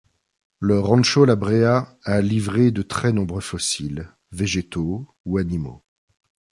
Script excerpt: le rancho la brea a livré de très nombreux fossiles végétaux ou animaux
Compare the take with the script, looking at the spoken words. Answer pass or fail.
pass